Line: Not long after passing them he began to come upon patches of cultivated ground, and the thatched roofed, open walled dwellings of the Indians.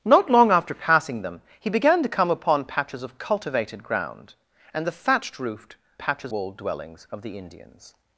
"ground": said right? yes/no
yes